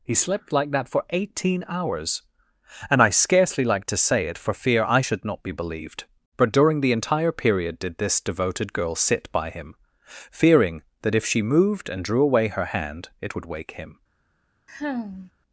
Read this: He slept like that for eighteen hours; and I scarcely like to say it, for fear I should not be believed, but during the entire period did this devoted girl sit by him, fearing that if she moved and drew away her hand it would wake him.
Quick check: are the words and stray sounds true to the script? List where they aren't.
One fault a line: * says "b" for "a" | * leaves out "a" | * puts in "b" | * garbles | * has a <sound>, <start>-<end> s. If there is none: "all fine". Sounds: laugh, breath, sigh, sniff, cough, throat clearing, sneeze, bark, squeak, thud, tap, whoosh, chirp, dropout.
* has a sigh, 14.7-15.3 s